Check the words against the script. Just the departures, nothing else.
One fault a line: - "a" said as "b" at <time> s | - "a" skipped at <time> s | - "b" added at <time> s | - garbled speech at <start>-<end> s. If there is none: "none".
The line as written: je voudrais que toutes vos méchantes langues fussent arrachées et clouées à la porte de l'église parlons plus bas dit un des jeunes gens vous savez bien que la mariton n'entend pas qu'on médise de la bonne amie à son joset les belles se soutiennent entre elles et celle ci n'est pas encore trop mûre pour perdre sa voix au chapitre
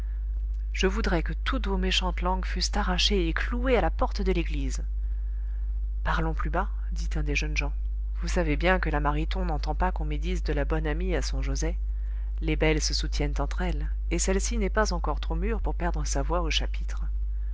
none